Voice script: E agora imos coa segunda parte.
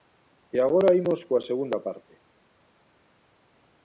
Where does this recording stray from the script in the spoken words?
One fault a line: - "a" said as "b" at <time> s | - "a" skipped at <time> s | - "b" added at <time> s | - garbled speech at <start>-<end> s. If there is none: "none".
none